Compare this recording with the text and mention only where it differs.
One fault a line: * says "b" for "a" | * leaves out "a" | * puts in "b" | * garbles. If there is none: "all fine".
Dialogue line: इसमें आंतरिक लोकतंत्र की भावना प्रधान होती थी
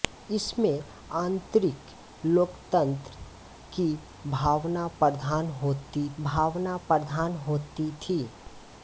* puts in "भावना प्रधान होती"